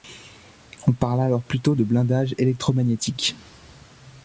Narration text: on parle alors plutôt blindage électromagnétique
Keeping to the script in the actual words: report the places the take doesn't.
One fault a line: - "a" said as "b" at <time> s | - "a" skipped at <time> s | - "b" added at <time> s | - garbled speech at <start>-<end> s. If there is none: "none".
- "de" added at 1.7 s